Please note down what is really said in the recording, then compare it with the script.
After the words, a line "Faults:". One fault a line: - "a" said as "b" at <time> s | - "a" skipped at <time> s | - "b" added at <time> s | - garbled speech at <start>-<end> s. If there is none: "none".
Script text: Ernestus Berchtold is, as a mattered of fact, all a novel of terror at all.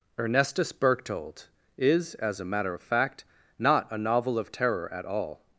Ernestus Berchtold is, as a matter of fact, not a novel of terror at all.
Faults:
- "mattered" said as "matter" at 2.5 s
- "all" said as "not" at 3.6 s